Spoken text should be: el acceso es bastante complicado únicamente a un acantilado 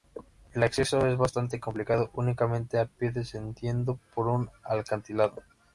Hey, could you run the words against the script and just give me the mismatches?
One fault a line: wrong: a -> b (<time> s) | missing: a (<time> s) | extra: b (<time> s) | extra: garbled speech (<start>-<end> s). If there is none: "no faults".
extra: pie descendiendo por (2.9 s)